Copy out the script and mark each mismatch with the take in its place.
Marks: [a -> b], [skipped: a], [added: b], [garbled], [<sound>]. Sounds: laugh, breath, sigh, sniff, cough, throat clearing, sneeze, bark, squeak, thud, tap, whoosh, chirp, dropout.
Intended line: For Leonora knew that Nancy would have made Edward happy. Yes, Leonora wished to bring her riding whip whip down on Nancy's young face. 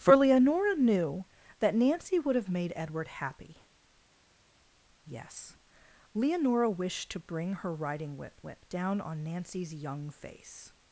For Leonora knew that Nancy would have made Edward happy. Yes, Leonora wished to bring her riding whip whip down on Nancy's young face.